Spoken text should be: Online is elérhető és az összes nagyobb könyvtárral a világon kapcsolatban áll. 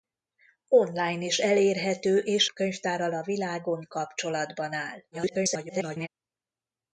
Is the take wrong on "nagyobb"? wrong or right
wrong